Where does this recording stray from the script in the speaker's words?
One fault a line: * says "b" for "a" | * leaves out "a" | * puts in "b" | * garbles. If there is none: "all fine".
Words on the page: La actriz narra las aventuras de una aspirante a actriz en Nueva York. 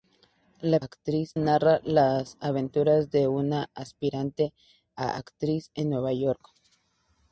all fine